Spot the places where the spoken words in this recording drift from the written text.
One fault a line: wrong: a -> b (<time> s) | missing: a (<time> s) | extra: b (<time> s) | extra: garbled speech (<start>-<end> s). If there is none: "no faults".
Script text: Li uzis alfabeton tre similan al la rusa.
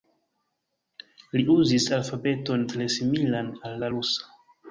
no faults